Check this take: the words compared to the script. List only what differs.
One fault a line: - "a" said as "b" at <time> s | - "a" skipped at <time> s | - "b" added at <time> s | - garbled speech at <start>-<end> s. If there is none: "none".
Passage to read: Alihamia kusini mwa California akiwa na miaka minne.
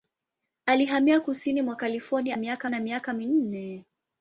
- "akiwa" said as "miaka" at 2.4 s